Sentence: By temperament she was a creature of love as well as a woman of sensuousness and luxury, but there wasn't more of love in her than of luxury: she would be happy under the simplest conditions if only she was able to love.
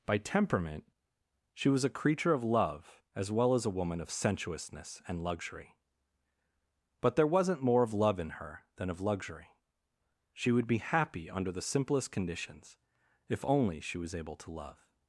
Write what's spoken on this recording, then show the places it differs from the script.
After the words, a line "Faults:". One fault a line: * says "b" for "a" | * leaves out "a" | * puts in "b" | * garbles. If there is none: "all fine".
By temperament she was a creature of love as well as a woman of sensuousness and luxury, but there wasn't more of love in her than of luxury: she would be happy under the simplest conditions if only she was able to love.
Faults:
all fine